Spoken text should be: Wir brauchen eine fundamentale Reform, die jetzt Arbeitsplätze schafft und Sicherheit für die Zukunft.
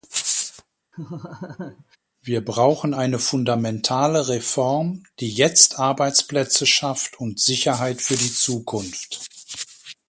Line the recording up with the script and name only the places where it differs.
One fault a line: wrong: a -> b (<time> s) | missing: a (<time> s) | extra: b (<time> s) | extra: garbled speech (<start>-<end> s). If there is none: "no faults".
no faults